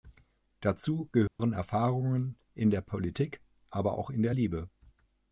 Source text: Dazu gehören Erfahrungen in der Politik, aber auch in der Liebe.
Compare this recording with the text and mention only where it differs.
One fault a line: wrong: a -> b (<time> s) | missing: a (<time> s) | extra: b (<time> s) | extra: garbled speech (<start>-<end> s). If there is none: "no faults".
no faults